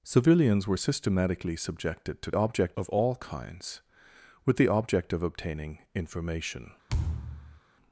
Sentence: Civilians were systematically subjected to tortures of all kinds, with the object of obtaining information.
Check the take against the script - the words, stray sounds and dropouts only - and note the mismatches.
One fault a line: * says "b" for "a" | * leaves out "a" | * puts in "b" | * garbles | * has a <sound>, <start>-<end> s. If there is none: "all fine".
* says "object" for "tortures"
* has a thud, 6.9-7.6 s